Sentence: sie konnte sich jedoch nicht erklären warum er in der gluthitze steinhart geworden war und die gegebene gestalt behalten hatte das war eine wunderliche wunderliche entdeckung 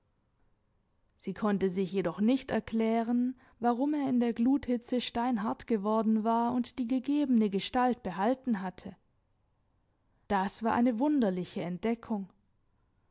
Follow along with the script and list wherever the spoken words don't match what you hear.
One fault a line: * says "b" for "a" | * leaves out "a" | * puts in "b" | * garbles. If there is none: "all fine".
* leaves out "wunderliche"